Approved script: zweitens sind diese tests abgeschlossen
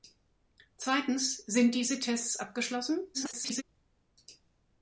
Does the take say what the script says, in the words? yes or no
no